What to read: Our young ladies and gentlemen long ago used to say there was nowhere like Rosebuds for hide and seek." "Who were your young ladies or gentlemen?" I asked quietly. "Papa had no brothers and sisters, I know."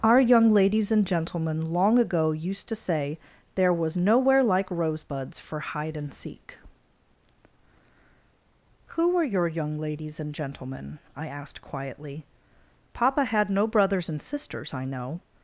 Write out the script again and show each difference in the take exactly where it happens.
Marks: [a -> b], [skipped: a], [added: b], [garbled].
Our young ladies and gentlemen long ago used to say there was nowhere like Rosebuds for hide and seek." "Who were your young ladies [or -> and] gentlemen?" I asked quietly. "Papa had no brothers and sisters, I know."